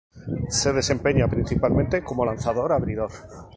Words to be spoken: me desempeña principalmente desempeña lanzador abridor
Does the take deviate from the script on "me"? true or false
true